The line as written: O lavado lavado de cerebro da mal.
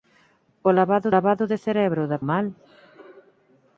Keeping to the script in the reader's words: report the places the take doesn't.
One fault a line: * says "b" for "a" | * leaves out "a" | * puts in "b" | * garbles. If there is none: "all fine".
all fine